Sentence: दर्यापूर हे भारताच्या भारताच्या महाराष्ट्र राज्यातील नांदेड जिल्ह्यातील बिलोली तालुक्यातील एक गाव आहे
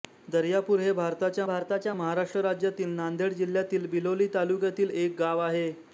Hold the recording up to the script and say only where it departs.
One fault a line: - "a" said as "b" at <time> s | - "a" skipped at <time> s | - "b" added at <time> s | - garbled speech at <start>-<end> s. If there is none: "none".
none